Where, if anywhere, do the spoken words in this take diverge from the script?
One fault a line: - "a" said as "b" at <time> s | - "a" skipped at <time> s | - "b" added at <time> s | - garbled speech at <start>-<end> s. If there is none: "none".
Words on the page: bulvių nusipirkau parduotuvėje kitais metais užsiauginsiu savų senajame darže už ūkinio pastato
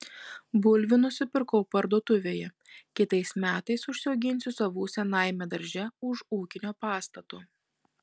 none